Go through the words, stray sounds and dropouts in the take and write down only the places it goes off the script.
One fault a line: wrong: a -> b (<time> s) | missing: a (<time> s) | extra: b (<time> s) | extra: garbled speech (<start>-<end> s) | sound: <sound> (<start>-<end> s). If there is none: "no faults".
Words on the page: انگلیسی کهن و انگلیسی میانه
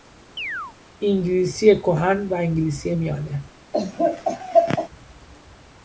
sound: chirp (0.4-0.8 s)
sound: laugh (3.7-4.9 s)